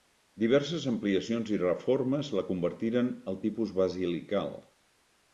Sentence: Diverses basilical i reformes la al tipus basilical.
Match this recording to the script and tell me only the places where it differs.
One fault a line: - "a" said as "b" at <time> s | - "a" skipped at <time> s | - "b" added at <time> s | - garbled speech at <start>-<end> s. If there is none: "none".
- "basilical" said as "ampliacions" at 0.9 s
- "convertiren" added at 2.5 s